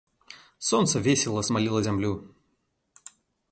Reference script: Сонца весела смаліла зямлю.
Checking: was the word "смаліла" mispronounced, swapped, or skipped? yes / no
no